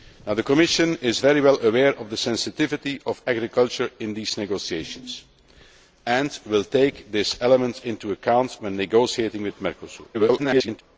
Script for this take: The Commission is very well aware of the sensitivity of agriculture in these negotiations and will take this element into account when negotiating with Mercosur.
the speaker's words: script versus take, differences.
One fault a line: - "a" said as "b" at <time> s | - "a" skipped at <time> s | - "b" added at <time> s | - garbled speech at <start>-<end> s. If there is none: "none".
- garbled speech at 10.1-10.8 s